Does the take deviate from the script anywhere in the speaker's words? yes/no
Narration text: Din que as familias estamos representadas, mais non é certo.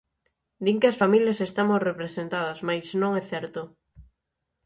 no